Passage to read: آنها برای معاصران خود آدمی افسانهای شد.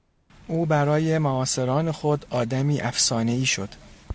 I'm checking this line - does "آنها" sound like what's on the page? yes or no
no